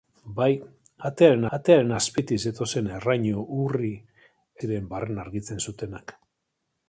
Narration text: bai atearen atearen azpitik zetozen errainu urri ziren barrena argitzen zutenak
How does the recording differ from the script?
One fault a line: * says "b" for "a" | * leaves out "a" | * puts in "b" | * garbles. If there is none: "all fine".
all fine